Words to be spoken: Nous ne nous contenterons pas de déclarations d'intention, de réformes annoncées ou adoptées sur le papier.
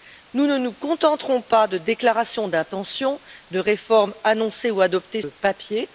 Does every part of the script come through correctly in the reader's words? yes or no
no